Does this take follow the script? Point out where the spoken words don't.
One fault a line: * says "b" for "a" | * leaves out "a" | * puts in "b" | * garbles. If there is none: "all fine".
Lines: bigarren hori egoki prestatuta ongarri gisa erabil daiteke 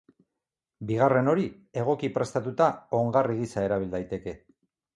all fine